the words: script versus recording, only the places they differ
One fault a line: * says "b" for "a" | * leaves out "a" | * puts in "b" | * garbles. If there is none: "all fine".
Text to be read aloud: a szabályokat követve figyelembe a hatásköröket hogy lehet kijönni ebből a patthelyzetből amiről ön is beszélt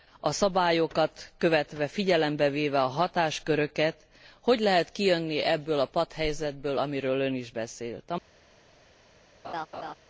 * puts in "véve"